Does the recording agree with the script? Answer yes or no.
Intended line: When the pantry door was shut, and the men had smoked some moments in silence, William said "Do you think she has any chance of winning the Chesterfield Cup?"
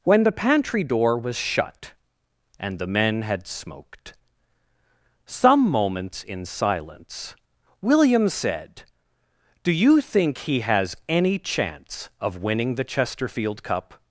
no